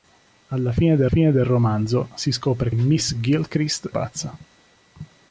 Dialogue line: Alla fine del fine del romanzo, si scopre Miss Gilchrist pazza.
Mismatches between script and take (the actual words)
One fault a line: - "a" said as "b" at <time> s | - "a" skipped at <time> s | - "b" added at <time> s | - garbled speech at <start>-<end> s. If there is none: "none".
none